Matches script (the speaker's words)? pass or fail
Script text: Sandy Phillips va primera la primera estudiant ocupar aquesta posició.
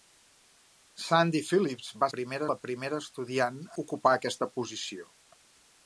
pass